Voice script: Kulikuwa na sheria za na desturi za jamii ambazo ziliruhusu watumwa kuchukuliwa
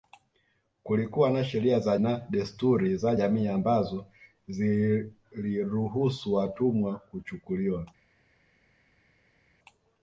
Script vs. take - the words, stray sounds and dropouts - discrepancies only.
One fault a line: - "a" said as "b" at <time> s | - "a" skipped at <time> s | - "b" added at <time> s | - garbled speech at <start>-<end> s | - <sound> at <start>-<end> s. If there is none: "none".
none